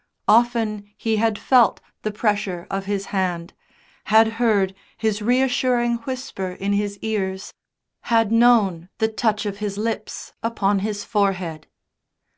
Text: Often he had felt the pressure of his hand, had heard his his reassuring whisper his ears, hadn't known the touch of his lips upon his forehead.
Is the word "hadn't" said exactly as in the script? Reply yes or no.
no